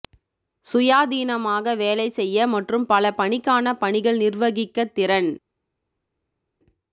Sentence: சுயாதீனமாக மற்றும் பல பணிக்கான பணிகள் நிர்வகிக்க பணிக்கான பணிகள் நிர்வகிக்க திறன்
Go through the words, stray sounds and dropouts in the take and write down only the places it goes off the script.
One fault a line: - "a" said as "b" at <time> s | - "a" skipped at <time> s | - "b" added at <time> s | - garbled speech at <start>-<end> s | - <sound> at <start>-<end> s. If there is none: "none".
- "வேலை செய்ய" added at 1.8 s
- "பணிக்கான பணிகள் நிர்வகிக்க" skipped at 4.9 s